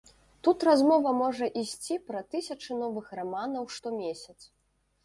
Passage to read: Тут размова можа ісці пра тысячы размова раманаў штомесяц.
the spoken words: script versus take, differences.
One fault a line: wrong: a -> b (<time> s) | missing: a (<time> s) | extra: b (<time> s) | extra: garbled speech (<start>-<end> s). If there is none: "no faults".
wrong: размова -> новых (2.8 s)